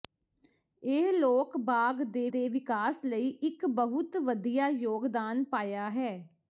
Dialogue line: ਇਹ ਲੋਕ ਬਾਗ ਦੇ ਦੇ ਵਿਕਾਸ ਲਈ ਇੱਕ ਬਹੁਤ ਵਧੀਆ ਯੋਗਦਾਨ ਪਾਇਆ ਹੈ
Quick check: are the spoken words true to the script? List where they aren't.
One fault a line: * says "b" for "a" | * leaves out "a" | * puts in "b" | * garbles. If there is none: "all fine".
all fine